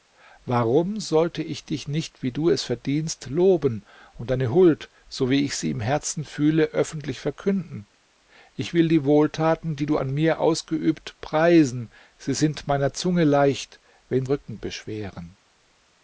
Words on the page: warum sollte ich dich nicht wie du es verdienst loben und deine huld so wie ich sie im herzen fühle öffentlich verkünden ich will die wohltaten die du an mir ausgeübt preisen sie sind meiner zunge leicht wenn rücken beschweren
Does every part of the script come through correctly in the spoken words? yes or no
yes